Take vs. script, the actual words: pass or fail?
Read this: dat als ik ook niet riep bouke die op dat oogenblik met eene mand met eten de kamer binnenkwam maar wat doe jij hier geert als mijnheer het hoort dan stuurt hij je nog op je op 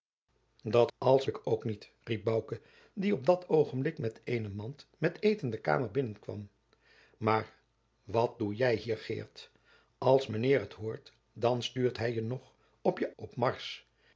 pass